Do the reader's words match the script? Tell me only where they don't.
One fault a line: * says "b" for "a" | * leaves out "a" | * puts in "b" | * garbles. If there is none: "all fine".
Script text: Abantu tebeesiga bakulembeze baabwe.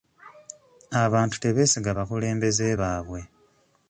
all fine